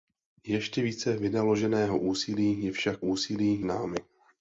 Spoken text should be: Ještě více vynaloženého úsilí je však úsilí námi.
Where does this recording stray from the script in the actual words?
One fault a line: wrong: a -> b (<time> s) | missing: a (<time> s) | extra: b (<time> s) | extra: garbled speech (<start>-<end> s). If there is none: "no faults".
no faults